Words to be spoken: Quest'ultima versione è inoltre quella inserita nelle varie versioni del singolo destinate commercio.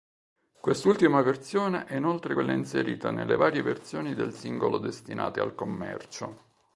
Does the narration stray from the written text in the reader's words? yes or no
yes